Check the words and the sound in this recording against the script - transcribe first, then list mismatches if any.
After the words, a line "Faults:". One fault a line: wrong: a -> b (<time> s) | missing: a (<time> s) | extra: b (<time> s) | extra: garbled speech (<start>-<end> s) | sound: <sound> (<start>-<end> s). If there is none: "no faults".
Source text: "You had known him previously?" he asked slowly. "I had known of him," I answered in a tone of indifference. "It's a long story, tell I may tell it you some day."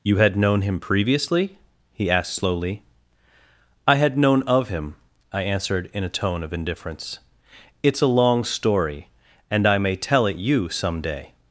"You had known him previously?" he asked slowly. "I had known of him," I answered in a tone of indifference. "It's a long story, and I may tell it you some day."
Faults:
wrong: tell -> and (9.5 s)